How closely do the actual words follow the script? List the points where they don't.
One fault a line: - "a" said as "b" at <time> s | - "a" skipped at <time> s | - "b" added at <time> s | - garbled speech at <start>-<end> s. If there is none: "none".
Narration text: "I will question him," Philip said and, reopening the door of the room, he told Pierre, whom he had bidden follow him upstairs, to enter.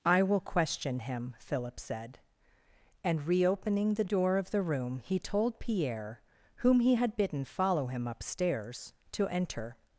none